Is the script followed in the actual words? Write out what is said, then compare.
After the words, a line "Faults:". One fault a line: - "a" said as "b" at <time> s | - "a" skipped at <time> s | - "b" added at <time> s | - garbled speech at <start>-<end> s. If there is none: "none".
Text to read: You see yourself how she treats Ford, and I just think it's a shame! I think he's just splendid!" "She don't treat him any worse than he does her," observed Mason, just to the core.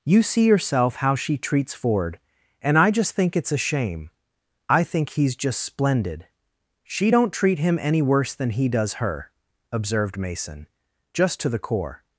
You see yourself how she treats Ford, and I just think it's a shame! I think he's just splendid!" "She don't treat him any worse than he does her," observed Mason, just to the core.
Faults:
none